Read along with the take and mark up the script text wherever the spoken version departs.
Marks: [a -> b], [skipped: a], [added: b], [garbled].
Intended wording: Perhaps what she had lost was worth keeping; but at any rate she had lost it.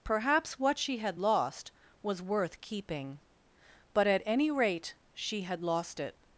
Perhaps what she had lost was worth keeping; but at any rate she had lost it.